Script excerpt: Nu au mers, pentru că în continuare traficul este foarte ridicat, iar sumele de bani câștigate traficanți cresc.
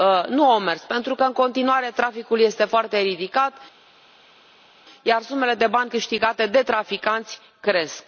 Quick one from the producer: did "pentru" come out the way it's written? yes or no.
yes